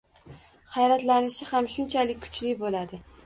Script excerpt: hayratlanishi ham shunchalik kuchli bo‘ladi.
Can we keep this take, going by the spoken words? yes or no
yes